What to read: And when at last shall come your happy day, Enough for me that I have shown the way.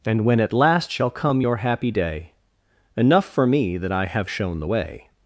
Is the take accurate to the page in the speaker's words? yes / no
yes